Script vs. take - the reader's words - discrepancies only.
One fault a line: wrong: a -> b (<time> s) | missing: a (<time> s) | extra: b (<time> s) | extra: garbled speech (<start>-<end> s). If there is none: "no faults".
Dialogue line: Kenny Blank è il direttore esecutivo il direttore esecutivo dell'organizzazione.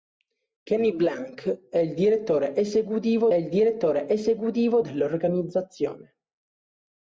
no faults